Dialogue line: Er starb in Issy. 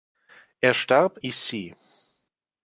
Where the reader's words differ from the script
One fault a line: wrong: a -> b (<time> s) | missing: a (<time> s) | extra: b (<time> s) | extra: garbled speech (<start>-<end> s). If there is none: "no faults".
missing: in (1.2 s)